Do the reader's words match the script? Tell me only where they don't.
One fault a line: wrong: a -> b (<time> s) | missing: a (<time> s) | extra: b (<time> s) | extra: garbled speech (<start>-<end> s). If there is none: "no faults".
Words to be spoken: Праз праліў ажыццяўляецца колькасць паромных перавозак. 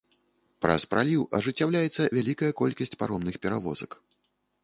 extra: вялікая (2.2 s)